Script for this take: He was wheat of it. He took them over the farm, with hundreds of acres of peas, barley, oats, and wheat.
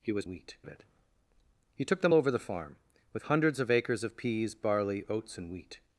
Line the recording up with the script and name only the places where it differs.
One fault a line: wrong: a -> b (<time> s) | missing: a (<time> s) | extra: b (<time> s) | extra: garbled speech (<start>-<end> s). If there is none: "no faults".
no faults